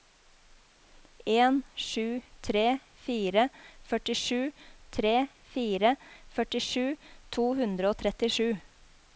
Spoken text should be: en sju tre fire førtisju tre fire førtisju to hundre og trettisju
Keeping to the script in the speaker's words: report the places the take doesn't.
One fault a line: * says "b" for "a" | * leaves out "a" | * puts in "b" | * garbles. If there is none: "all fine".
all fine